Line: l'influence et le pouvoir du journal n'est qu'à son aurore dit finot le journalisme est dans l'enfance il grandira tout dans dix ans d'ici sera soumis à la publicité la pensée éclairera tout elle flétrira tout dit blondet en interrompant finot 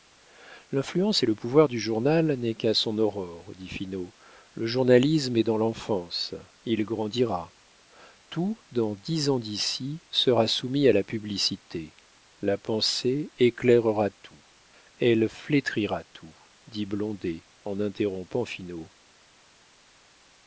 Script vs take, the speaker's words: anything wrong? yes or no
no